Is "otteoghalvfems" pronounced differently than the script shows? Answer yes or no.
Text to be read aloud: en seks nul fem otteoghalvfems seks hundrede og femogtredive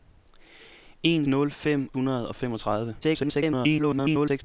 yes